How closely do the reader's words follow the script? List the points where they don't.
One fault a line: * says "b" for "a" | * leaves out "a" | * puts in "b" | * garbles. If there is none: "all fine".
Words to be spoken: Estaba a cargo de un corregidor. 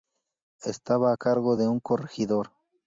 all fine